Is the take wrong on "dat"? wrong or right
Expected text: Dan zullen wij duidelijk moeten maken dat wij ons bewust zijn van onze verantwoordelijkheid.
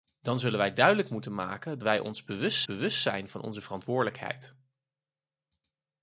wrong